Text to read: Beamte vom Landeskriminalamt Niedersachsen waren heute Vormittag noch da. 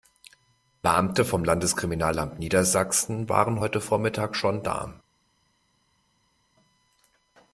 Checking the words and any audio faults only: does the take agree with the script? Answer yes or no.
no